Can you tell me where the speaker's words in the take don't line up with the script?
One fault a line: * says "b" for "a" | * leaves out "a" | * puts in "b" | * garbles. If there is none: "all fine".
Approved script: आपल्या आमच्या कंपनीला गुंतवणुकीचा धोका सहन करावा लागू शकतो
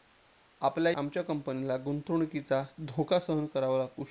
all fine